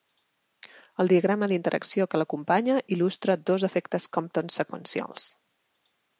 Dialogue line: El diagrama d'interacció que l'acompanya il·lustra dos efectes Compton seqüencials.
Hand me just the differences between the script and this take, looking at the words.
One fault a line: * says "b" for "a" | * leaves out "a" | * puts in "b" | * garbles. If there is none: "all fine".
all fine